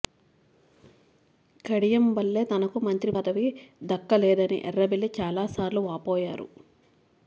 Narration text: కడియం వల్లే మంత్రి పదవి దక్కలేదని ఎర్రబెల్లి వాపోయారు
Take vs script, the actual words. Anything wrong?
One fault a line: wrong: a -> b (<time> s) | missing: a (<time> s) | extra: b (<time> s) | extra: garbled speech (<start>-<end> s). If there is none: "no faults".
extra: తనకు (2.5 s)
extra: చాలాసార్లు (5.2 s)